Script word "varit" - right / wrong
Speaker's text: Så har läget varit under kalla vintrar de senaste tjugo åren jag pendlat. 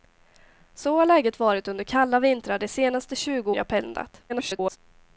right